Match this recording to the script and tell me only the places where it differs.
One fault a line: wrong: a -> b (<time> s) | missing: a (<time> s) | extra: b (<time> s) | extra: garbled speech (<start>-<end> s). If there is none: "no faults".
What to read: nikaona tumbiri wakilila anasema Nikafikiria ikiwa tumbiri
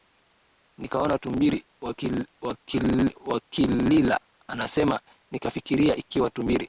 no faults